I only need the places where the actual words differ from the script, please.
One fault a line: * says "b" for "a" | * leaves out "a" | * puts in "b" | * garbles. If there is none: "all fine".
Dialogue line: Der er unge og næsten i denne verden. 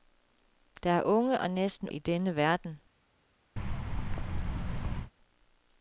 all fine